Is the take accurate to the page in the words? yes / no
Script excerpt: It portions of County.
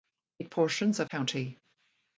yes